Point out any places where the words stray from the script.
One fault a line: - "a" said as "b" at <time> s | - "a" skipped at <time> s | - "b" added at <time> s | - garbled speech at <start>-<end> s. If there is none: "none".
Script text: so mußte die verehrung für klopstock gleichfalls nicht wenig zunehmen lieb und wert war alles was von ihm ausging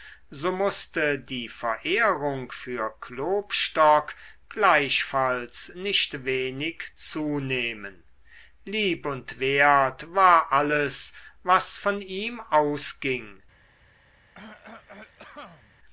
none